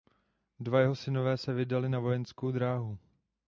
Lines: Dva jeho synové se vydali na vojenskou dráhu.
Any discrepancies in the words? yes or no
no